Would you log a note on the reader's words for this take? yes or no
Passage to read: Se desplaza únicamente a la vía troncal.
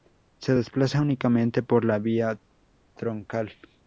yes